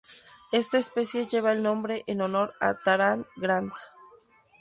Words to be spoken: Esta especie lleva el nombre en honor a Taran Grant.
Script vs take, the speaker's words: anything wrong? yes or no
no